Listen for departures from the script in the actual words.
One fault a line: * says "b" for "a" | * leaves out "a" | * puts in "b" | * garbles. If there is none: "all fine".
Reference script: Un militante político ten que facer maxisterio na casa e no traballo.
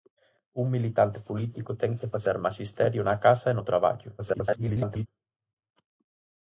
* garbles